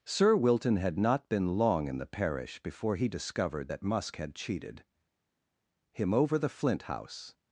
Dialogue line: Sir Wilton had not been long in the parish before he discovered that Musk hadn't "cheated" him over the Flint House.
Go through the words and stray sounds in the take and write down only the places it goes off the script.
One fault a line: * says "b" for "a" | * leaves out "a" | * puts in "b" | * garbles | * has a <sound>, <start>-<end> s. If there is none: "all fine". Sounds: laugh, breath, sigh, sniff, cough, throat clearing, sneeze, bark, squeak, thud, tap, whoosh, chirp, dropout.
* says "had" for "hadn't"